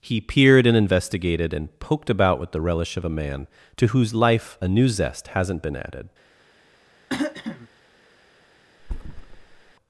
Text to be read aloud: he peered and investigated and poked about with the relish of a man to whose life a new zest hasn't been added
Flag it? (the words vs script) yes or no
no